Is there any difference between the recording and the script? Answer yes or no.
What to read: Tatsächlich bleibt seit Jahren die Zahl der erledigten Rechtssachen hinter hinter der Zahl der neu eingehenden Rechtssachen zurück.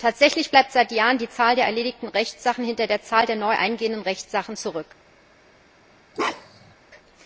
yes